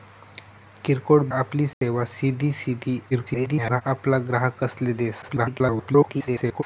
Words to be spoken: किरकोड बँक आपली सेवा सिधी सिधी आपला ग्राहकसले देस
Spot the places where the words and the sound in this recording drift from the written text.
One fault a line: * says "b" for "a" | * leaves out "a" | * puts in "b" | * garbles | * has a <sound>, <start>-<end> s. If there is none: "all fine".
* leaves out "बँक"
* has a dropout, 1.7-1.8 s
* garbles
* garbles